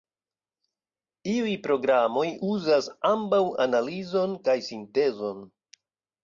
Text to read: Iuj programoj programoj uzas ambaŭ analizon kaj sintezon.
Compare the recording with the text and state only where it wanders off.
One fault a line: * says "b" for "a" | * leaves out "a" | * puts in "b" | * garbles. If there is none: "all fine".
* leaves out "programoj"